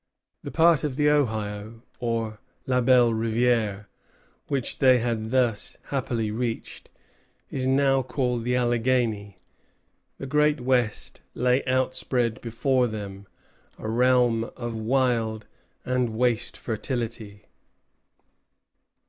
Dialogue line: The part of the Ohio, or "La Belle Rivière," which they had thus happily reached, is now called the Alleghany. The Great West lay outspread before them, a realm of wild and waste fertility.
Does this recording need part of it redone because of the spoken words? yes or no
no